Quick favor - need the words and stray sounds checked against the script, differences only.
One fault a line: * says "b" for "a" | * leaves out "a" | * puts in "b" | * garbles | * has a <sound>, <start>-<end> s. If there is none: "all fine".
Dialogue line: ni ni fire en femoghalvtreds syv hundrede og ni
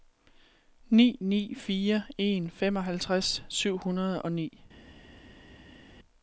all fine